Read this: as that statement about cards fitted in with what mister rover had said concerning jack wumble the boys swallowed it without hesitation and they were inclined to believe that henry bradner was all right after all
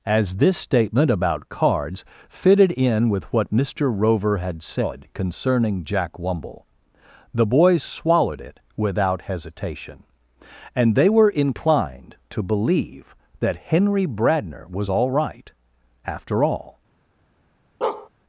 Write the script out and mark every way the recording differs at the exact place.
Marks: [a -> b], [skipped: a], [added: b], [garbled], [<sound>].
as [that -> this] statement about cards fitted in with what mister rover had said concerning jack wumble the boys swallowed it without hesitation and they were inclined to believe that henry bradner was all right after all [bark]